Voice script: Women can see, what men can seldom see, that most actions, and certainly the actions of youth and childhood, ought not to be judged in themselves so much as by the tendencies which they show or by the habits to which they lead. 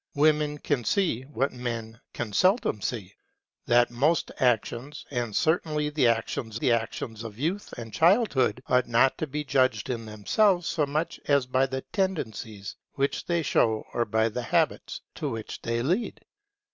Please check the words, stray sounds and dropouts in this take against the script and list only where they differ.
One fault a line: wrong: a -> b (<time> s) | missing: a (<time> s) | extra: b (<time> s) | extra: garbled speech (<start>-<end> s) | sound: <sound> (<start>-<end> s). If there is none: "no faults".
extra: the actions (6.6 s)